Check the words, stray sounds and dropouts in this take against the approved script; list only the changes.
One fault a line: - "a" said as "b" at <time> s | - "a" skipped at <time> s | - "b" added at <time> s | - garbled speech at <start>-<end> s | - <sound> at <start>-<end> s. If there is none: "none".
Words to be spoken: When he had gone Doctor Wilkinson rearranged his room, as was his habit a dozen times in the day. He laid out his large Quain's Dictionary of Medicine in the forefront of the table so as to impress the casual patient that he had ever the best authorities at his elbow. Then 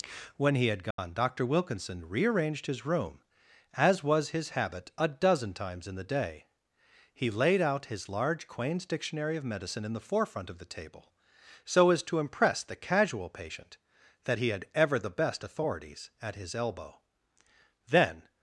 - dropout at 0.9-1.0 s